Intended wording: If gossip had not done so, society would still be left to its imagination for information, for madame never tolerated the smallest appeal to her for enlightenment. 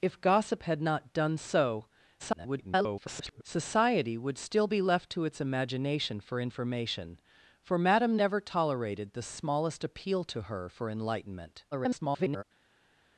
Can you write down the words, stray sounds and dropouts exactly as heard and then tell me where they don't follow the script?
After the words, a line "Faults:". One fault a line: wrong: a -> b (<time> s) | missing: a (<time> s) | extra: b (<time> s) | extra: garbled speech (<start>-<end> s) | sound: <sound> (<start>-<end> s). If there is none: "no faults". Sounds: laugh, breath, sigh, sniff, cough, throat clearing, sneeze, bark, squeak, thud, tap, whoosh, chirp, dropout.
If gossip had not done so, [garbled] society would still be left to its imagination for information, for madame never tolerated the smallest appeal to her for enlightenment. [garbled]
Faults:
extra: garbled speech (2.2-3.4 s)
extra: garbled speech (11.7-12.4 s)